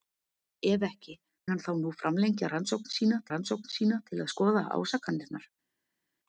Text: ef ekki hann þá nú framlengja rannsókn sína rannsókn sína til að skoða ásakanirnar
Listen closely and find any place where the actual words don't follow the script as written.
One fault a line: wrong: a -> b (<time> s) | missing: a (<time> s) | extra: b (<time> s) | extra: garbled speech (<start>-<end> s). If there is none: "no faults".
no faults